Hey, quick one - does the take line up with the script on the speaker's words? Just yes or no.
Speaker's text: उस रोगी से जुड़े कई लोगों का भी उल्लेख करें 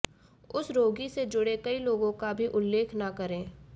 no